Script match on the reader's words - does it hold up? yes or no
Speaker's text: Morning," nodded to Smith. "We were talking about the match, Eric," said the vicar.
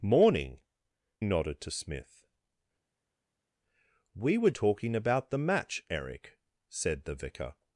yes